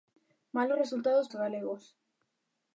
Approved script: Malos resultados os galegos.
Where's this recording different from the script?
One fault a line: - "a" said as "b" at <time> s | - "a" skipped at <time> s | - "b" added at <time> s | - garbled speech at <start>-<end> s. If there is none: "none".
none